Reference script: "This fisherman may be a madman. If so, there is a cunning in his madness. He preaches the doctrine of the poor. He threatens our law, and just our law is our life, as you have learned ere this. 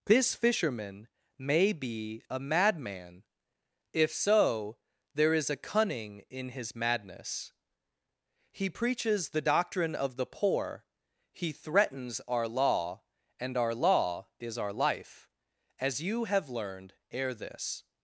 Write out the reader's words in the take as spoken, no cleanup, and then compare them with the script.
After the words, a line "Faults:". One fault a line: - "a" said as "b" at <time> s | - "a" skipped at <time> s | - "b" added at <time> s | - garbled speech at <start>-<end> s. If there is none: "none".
"This fisherman may be a madman. If so, there is a cunning in his madness. He preaches the doctrine of the poor. He threatens our law, and our law is our life, as you have learned ere this.
Faults:
- "just" skipped at 13.6 s